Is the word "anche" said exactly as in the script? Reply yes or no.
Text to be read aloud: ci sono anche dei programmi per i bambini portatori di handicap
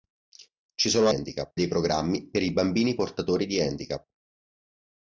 no